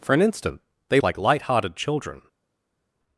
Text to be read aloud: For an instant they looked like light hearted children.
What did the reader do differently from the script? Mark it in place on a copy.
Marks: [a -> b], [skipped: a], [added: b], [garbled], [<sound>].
For an instant they [skipped: looked] like light hearted children.